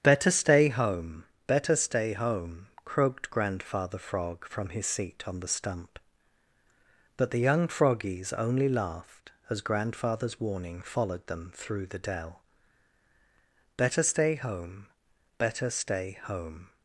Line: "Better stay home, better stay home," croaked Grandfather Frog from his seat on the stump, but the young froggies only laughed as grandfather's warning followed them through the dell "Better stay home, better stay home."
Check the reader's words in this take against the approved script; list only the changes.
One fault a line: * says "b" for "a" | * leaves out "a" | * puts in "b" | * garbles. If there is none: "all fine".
all fine